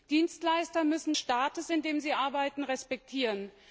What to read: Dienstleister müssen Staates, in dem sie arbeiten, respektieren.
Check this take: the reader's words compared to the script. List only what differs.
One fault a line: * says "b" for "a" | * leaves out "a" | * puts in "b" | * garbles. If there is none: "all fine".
all fine